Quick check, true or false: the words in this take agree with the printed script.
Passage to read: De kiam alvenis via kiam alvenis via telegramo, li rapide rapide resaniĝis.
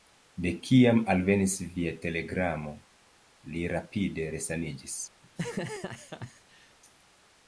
false